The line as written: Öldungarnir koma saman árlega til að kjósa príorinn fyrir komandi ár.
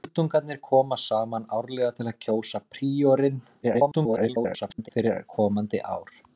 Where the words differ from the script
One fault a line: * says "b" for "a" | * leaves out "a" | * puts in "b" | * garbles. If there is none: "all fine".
* garbles